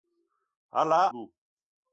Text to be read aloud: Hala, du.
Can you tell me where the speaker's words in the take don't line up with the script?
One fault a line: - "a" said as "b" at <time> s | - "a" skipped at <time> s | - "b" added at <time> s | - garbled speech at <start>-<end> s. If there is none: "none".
none